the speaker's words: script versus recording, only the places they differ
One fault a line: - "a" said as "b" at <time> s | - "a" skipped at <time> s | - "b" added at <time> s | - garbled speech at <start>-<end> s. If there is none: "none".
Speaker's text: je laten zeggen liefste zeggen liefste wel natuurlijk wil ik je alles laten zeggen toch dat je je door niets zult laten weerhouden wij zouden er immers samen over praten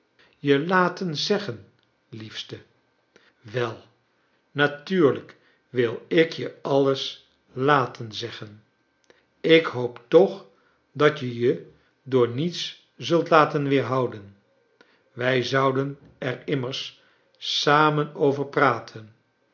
- "zeggen liefste" skipped at 2.6 s
- "ik hoop" added at 9.4 s